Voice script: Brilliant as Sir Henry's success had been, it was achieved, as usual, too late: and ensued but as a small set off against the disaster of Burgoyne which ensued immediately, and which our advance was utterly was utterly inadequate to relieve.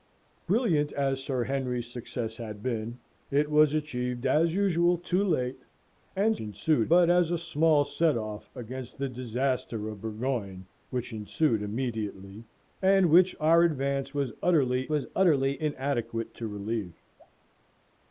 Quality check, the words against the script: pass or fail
pass